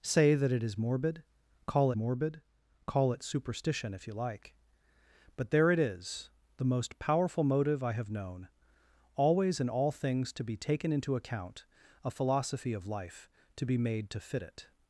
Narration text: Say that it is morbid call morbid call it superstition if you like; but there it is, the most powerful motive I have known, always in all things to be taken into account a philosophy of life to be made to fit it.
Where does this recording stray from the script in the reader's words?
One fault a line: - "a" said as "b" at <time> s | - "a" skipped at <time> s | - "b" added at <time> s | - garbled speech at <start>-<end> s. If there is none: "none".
none